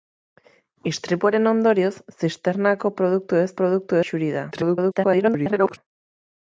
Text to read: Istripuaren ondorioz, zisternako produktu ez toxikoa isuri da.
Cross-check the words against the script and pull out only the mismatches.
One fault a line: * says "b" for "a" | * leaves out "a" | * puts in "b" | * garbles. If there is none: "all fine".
* says "produktu" for "toxikoa"
* garbles